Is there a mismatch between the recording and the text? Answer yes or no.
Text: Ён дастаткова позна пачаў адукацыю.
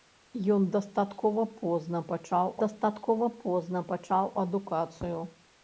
yes